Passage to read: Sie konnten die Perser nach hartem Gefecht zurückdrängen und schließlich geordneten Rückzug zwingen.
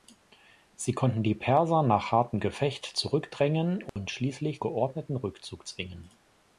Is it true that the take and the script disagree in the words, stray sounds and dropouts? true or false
true